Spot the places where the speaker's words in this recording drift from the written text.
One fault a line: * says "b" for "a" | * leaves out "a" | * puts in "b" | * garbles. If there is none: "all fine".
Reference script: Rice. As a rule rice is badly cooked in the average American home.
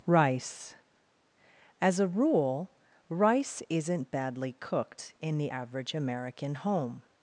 * says "isn't" for "is"